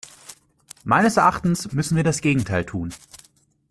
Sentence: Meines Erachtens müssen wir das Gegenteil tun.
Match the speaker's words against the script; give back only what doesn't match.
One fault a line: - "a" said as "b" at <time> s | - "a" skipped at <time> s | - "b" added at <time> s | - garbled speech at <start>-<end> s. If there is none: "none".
none